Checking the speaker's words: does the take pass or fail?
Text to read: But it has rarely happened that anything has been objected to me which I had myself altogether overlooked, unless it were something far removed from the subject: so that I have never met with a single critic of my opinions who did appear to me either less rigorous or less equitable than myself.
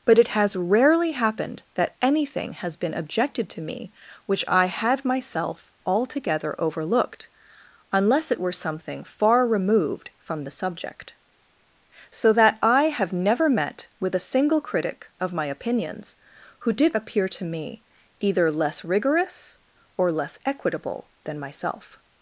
pass